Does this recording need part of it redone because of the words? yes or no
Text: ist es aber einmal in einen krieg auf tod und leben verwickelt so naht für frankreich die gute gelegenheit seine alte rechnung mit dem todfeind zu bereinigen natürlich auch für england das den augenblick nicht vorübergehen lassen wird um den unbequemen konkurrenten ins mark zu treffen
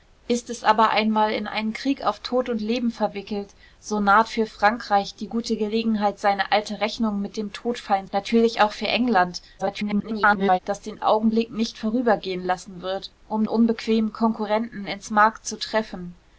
yes